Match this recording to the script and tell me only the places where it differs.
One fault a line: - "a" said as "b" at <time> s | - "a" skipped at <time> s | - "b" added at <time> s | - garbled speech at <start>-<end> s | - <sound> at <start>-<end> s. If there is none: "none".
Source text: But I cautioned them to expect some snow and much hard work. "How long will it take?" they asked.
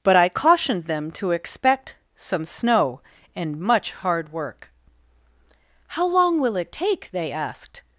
none